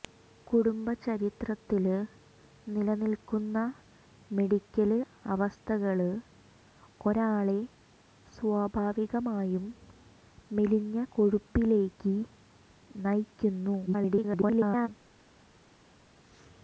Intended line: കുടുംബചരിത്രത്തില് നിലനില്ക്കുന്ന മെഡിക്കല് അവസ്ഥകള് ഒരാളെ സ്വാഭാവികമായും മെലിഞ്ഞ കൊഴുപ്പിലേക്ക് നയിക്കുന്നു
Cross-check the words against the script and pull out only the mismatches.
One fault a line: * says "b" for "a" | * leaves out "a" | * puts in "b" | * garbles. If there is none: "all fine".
* garbles